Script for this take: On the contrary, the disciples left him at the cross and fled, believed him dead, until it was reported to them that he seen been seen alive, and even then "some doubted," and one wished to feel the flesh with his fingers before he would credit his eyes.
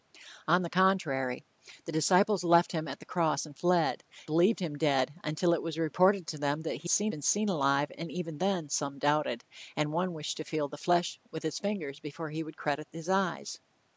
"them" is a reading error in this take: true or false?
false